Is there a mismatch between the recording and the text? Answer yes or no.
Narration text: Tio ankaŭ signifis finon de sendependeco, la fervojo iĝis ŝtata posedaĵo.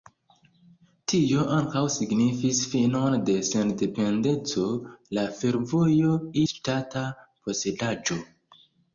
yes